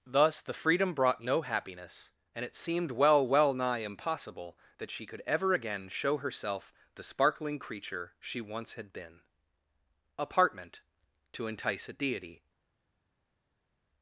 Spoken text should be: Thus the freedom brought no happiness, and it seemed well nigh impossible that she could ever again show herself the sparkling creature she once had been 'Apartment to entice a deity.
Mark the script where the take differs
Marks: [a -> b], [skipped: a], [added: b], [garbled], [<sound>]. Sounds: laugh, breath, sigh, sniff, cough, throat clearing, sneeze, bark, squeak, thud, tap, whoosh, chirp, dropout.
Thus the freedom brought no happiness, and it seemed well [added: well] nigh impossible that she could ever again show herself the sparkling creature she once had been 'Apartment to entice a deity.